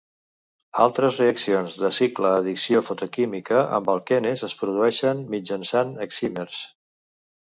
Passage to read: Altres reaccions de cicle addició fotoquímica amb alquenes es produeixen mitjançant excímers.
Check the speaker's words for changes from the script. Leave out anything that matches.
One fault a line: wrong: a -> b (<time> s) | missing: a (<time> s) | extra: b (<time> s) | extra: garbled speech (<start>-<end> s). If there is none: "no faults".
no faults